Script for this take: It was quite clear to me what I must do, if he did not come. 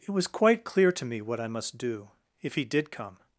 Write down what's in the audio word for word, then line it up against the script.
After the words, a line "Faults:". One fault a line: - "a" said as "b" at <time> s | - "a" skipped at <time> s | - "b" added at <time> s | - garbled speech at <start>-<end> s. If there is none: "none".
It was quite clear to me what I must do, if he did come.
Faults:
- "not" skipped at 2.9 s